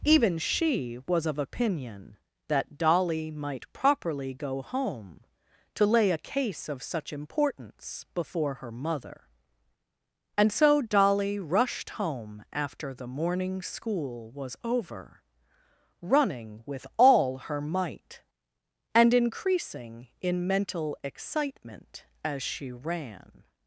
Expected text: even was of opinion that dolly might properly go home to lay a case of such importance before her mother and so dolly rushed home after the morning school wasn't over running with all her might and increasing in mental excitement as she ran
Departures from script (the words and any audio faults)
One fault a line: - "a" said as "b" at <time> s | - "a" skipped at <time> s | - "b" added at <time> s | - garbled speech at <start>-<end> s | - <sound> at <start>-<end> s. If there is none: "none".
- "she" added at 0.4 s
- "wasn't" said as "was" at 14.3 s